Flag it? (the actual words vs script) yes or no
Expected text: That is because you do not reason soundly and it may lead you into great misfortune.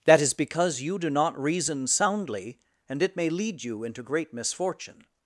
no